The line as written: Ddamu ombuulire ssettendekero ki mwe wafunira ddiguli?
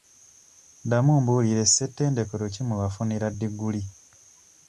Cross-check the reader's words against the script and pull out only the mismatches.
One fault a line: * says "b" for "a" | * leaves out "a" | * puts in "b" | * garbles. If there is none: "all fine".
all fine